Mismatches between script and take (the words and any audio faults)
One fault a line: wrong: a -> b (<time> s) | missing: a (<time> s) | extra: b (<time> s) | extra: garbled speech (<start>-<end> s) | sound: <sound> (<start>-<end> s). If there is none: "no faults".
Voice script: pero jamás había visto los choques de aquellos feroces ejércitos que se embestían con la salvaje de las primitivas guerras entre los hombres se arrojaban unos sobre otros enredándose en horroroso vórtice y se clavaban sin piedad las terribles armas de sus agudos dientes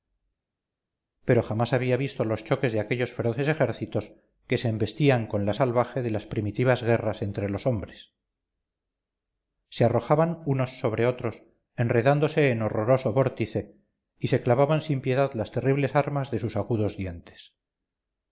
no faults